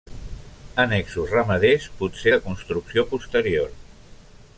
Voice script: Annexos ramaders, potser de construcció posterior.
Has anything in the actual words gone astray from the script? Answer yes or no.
no